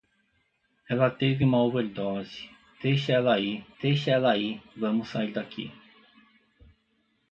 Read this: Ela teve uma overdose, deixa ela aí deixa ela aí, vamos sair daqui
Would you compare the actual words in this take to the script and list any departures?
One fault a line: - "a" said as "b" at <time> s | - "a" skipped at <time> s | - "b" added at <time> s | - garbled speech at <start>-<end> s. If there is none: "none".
none